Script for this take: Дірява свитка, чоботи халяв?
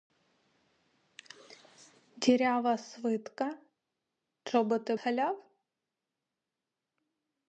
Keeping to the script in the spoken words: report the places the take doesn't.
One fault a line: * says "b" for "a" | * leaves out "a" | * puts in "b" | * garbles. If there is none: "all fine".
all fine